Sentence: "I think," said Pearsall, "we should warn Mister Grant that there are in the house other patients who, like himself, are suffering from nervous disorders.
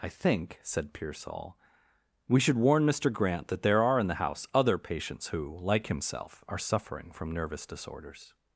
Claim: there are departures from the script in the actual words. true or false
false